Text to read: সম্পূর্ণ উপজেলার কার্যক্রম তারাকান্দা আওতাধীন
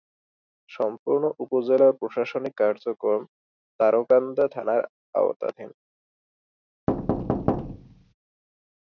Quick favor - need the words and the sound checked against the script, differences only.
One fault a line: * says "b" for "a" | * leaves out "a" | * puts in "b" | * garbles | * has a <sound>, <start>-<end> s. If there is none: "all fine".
* puts in "প্রশাসনিক"
* puts in "থানার"
* has a thud, 6.9-8.1 s